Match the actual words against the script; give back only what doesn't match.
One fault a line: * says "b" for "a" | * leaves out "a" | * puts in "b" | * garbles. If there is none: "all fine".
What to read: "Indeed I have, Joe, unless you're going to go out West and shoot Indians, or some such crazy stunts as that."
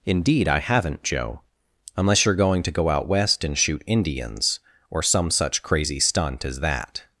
* says "haven't" for "have"
* says "stunt" for "stunts"